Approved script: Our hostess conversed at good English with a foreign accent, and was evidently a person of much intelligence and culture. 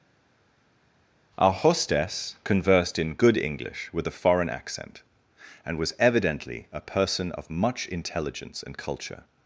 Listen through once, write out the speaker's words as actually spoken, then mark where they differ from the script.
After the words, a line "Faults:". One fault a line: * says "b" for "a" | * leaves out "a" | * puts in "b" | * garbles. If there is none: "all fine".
Our hostess conversed in good English with a foreign accent, and was evidently a person of much intelligence and culture.
Faults:
* says "in" for "at"